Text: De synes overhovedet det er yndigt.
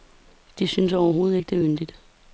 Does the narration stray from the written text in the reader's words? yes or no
yes